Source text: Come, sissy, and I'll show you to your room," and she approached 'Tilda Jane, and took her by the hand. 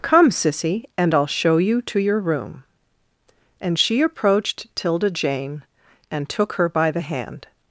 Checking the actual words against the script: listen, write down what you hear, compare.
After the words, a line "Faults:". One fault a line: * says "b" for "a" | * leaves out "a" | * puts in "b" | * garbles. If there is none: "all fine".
Come, sissy, and I'll show you to your room," and she approached 'Tilda Jane, and took her by the hand.
Faults:
all fine